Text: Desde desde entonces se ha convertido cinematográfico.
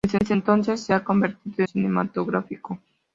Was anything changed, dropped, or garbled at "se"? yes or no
no